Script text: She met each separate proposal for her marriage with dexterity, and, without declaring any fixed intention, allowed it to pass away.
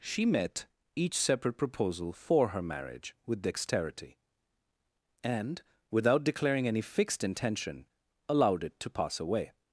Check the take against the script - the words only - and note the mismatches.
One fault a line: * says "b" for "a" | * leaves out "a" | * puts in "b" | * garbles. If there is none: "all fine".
all fine